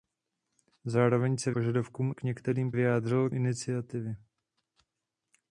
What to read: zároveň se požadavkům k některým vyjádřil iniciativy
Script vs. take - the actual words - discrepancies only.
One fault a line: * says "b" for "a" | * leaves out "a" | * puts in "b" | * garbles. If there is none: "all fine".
all fine